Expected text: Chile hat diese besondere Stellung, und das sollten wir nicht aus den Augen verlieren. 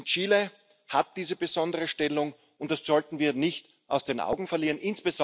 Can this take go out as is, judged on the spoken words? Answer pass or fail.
pass